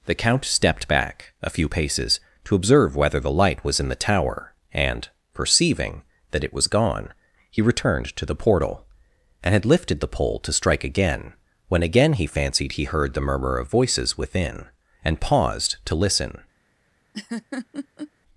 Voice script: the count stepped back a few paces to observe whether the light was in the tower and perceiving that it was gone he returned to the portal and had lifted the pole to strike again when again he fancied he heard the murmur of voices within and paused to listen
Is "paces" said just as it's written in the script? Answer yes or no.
yes